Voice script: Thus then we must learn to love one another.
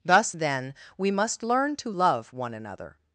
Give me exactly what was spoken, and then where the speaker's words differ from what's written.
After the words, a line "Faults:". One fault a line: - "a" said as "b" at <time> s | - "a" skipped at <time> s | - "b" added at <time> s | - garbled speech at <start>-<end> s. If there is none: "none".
Thus then we must learn to love one another.
Faults:
none